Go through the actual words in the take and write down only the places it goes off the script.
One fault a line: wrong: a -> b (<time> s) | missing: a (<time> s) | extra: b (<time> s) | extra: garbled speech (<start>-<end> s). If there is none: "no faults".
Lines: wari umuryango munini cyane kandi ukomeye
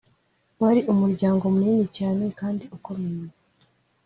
no faults